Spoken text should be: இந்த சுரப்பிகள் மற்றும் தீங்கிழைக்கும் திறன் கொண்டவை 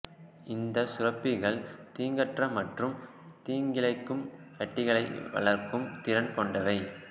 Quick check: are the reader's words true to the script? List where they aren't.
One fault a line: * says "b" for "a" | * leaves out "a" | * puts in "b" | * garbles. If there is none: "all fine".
* puts in "தீங்கற்ற"
* puts in "கட்டிகளை வளர்க்கும்"